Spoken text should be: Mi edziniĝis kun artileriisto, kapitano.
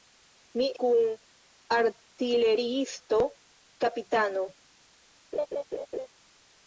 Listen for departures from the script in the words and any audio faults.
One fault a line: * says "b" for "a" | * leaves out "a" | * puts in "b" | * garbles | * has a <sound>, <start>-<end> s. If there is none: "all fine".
* leaves out "edziniĝis"
* has a laugh, 5.3-6.1 s